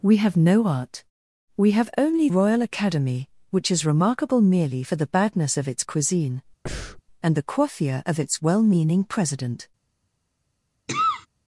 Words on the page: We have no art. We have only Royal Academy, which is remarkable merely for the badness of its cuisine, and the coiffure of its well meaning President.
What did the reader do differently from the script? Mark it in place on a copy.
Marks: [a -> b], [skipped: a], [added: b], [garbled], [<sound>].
We have no art. We have only Royal Academy, which is remarkable merely for the badness of its cuisine, [breath] and the coiffure of its well meaning President. [cough]